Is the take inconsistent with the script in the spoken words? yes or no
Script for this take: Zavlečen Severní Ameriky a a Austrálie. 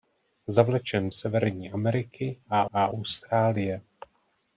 no